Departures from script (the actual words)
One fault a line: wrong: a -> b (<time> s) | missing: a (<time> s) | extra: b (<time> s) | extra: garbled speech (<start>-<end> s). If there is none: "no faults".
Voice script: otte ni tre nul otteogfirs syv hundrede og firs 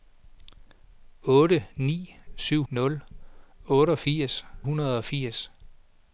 wrong: tre -> syv (2.4 s)
missing: syv (4.5 s)